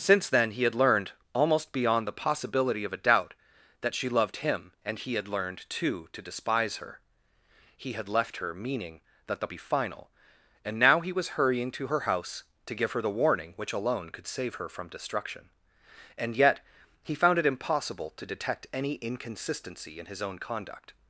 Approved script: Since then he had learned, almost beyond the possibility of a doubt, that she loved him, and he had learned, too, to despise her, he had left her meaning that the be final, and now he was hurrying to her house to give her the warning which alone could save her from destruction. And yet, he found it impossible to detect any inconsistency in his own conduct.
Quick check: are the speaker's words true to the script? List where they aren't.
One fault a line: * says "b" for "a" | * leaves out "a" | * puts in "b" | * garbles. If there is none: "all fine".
all fine